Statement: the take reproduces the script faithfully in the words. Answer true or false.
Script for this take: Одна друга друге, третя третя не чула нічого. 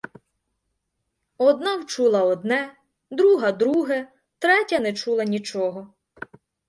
false